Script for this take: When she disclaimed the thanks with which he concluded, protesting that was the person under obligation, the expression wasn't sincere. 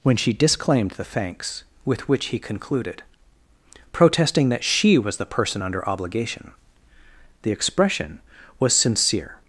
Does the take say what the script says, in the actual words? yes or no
no